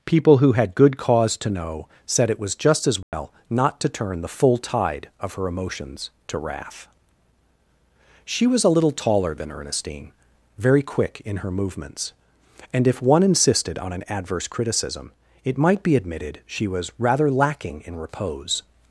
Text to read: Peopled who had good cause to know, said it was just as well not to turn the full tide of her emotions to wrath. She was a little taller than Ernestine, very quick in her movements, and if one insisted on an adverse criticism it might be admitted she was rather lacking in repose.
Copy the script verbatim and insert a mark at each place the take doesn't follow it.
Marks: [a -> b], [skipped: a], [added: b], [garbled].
[Peopled -> People] who had good cause to know, said it was just as well not to turn the full tide of her emotions to wrath. She was a little taller than Ernestine, very quick in her movements, and if one insisted on an adverse criticism it might be admitted she was rather lacking in repose.